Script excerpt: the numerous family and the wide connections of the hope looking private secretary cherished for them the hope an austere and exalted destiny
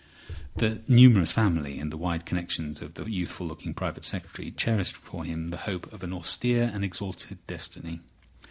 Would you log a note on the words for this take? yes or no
yes